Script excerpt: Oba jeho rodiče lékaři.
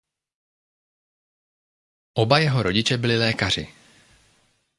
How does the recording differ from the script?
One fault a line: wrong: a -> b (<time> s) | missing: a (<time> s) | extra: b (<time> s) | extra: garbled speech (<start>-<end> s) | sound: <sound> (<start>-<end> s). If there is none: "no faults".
extra: byli (3.0 s)